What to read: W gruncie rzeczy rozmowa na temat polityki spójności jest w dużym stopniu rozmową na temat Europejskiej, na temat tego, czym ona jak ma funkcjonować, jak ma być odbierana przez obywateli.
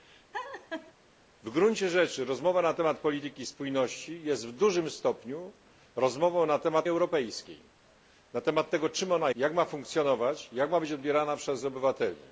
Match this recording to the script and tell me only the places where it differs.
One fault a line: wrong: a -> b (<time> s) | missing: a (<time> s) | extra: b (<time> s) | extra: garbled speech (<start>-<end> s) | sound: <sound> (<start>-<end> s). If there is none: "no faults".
sound: laugh (0.3-0.9 s)